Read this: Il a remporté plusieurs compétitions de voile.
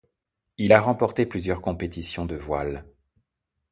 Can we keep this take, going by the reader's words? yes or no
yes